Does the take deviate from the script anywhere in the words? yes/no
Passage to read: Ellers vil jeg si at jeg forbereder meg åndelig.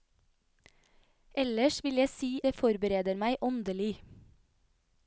yes